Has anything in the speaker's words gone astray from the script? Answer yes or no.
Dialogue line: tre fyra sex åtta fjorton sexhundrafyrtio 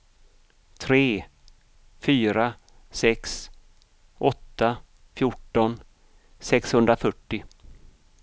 no